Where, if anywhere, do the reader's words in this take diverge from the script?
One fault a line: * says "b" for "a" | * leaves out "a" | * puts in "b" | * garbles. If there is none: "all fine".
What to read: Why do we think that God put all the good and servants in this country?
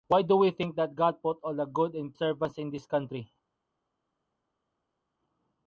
all fine